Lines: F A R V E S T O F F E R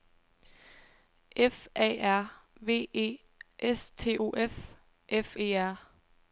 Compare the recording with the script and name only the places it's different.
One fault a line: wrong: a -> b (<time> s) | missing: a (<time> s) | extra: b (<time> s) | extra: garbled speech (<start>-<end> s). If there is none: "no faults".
no faults